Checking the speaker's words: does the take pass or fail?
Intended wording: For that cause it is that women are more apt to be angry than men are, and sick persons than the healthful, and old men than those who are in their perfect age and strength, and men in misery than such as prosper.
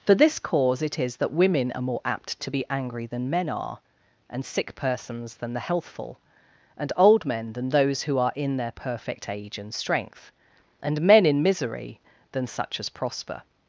fail